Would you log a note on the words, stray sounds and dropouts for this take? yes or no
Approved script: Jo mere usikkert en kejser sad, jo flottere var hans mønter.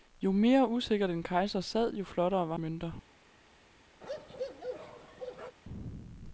yes